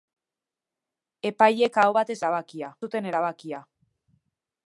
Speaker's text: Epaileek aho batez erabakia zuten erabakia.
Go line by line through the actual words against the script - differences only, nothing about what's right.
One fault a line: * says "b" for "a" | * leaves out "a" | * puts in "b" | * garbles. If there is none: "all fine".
all fine